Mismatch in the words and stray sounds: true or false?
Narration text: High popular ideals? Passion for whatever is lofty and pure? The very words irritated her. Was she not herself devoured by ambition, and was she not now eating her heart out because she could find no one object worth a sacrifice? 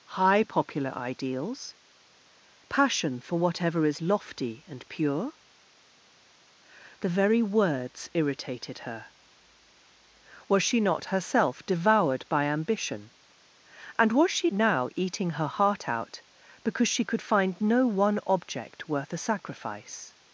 true